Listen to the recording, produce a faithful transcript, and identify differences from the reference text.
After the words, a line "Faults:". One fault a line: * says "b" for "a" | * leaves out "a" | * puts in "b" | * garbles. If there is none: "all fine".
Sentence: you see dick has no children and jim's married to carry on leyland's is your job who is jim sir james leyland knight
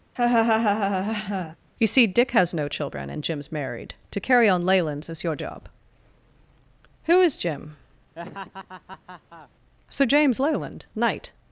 you see dick has no children and jim's married to carry on leyland's is your job who is jim sir james leyland knight
Faults:
all fine